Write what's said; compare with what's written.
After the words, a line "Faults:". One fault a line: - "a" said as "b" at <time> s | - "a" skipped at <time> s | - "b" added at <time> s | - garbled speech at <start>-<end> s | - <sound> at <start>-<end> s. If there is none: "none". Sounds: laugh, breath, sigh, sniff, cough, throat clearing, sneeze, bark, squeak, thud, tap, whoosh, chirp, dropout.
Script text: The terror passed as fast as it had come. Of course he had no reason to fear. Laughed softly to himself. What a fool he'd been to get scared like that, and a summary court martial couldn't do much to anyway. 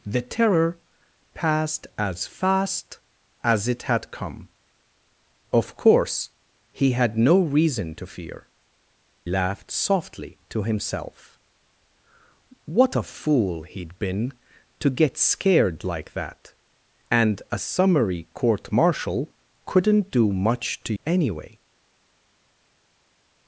The terror passed as fast as it had come. Of course he had no reason to fear. Laughed softly to himself. What a fool he'd been to get scared like that, and a summary court martial couldn't do much to anyway.
Faults:
none